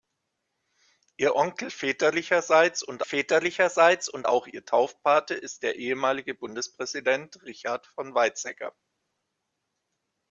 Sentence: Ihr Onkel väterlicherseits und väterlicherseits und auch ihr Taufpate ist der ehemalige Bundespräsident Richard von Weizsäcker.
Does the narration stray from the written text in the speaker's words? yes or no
no